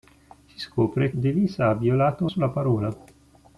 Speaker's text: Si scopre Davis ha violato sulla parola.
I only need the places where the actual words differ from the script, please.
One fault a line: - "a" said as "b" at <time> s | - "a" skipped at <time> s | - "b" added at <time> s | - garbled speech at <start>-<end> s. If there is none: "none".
none